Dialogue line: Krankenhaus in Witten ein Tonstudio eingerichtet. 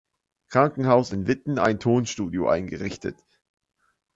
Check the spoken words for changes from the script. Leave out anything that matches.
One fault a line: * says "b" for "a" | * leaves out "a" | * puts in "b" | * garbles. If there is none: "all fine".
all fine